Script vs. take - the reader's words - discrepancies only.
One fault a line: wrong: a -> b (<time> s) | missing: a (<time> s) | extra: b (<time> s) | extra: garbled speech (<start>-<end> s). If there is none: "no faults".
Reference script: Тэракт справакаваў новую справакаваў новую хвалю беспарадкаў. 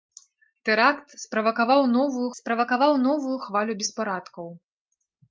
no faults